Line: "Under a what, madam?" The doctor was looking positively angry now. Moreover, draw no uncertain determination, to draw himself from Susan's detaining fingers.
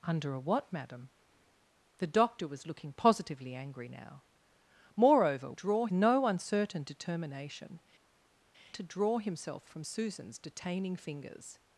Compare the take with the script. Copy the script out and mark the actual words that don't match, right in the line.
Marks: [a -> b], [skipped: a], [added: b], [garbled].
"Under a what, madam?" The doctor was looking positively angry now. Moreover, draw no uncertain determination, to draw himself from Susan's detaining fingers.